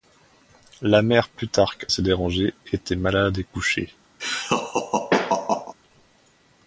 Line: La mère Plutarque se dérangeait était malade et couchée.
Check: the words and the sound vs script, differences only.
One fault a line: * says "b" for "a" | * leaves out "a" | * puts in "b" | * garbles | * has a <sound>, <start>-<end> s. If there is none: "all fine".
* has a laugh, 4.2-5.7 s